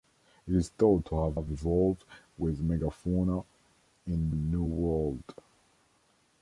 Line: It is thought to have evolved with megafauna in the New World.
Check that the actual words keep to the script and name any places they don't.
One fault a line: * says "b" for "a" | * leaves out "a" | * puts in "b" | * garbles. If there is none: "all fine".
* puts in "have"
* leaves out "the"